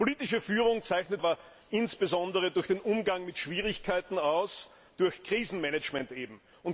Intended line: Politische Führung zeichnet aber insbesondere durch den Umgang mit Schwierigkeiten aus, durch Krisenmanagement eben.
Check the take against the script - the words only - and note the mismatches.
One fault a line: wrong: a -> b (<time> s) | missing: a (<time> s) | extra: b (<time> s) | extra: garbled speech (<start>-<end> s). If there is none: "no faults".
no faults